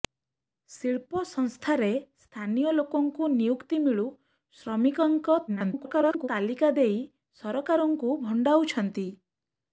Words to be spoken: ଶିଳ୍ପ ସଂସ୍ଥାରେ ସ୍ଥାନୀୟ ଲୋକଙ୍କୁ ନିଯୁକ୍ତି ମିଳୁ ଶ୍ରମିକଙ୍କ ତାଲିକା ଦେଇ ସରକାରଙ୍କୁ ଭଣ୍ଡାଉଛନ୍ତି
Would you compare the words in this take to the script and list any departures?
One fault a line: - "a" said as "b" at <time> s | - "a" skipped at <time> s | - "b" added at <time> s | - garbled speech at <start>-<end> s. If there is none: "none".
- garbled speech at 5.5-6.3 s